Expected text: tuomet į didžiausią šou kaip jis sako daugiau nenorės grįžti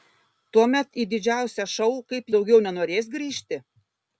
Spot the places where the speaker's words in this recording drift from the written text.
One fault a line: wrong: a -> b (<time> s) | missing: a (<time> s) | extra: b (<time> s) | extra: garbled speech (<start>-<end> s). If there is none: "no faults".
missing: jis sako (2.3 s)